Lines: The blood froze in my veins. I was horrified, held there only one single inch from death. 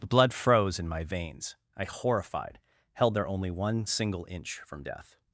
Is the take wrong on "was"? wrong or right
wrong